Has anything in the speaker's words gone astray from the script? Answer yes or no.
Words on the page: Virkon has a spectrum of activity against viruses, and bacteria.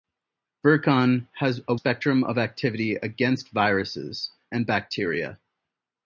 no